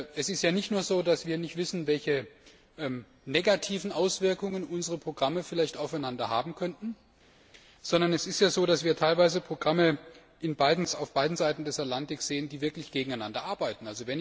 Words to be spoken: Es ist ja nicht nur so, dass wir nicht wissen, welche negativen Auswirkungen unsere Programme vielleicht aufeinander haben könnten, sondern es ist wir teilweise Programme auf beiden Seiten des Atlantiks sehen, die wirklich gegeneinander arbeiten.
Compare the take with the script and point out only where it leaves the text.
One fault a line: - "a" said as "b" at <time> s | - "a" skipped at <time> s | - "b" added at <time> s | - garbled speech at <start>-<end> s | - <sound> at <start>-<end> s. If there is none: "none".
- "so dass" added at 8.5 s